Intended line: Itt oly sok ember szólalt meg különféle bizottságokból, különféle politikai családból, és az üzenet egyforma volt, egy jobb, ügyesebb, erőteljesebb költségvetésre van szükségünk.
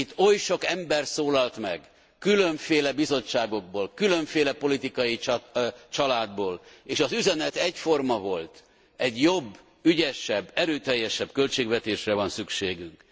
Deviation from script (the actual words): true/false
false